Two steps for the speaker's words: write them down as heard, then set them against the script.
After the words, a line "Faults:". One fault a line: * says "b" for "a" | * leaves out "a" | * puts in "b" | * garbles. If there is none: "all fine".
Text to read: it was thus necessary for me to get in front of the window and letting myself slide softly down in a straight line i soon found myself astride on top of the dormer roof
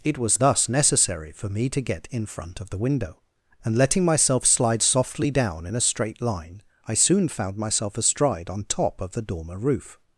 it was thus necessary for me to get in front of the window and letting myself slide softly down in a straight line i soon found myself astride on top of the dormer roof
Faults:
all fine